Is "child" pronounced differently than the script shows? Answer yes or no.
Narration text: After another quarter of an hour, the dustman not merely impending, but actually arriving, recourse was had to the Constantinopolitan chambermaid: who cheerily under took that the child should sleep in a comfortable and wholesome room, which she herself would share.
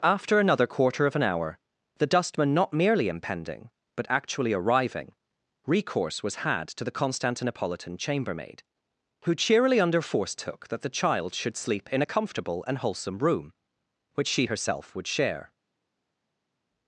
no